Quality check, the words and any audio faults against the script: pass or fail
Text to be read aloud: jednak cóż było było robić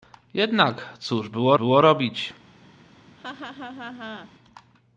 fail